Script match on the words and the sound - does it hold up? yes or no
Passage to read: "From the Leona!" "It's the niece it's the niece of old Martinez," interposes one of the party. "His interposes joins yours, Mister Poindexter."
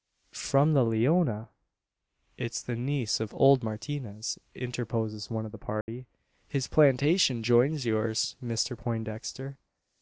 no